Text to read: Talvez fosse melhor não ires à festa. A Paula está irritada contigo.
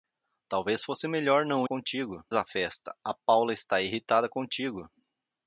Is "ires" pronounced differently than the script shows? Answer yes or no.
yes